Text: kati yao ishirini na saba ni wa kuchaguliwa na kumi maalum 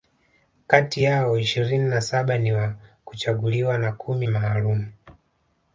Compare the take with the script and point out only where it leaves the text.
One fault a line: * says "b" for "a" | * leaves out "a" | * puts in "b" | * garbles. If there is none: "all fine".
all fine